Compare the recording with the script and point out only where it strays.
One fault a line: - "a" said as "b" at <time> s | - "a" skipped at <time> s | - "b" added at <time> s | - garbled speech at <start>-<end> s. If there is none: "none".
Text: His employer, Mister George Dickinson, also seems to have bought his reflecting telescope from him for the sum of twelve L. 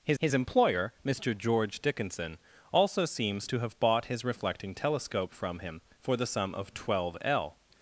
- "his" added at 0.2 s